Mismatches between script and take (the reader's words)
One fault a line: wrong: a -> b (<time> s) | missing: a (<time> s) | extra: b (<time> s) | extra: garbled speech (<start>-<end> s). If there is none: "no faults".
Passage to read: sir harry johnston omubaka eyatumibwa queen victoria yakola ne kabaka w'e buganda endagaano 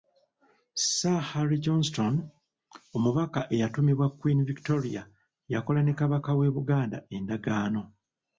no faults